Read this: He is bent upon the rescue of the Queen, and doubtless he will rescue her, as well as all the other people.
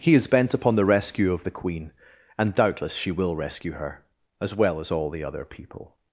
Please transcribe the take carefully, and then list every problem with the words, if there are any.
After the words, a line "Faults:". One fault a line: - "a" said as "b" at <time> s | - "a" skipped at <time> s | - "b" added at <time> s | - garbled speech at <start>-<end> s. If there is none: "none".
He is bent upon the rescue of the Queen, and doubtless she will rescue her, as well as all the other people.
Faults:
- "he" said as "she" at 3.0 s